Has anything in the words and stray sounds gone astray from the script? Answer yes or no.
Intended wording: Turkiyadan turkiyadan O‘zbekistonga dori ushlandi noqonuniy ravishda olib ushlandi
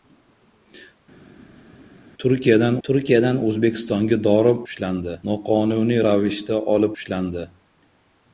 no